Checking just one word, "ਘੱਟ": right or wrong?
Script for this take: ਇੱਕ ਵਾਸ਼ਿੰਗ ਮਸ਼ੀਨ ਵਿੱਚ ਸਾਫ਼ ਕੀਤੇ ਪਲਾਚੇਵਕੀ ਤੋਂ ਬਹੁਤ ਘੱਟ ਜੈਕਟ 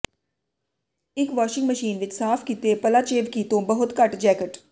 right